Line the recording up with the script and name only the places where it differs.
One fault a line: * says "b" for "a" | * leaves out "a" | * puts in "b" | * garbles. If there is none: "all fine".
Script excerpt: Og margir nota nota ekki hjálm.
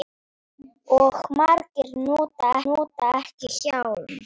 all fine